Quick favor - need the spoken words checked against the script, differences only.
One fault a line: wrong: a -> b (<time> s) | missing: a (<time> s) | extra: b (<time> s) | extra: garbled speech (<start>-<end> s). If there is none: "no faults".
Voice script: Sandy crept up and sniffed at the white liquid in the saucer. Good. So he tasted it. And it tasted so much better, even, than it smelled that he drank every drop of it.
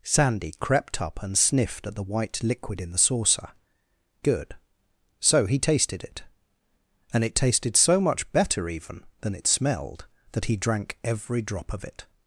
no faults